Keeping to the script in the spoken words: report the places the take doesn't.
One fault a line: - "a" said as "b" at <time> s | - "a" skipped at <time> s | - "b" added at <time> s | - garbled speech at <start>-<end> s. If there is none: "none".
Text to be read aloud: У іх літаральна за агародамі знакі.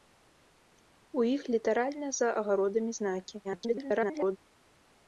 - garbled speech at 3.4-4.4 s